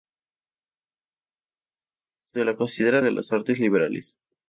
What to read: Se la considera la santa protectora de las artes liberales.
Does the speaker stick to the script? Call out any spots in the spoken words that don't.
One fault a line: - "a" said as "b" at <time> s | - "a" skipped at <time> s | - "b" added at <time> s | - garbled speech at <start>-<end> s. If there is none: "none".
- "la santa protectora" skipped at 3.0 s